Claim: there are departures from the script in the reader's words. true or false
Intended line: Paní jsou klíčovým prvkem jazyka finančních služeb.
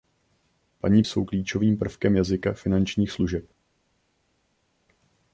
false